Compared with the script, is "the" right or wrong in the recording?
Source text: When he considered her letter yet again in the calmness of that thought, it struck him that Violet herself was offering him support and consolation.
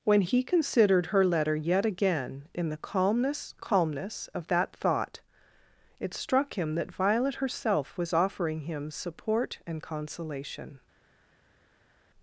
right